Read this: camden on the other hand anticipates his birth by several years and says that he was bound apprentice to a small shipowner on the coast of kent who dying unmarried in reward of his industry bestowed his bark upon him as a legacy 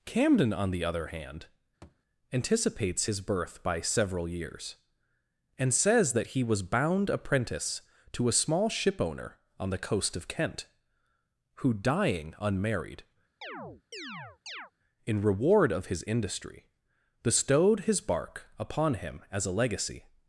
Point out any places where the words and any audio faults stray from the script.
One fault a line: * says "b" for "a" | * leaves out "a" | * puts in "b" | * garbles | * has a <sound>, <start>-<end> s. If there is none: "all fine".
* has a thud, 1.8-2.0 s
* has a chirp, 13.4-14.7 s